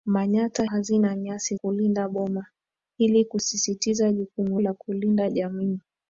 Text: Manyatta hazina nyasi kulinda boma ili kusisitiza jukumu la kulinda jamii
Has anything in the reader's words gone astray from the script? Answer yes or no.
no